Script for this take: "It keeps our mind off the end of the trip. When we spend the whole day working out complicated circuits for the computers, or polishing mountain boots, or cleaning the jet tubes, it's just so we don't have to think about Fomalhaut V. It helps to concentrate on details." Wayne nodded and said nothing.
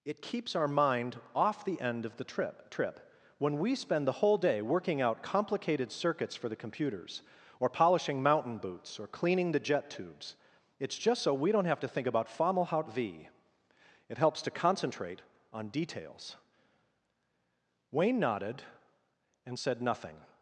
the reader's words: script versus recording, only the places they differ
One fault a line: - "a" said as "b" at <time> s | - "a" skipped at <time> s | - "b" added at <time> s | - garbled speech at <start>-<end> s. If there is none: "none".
- "trip" added at 2.7 s